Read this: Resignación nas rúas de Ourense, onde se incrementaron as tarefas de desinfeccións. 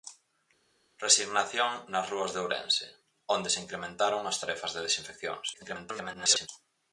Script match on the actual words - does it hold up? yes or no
no